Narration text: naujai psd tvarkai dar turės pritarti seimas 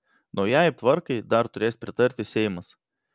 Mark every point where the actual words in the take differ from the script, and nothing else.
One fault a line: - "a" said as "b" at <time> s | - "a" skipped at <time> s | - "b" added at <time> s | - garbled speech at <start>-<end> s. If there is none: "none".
- "psd" skipped at 0.7 s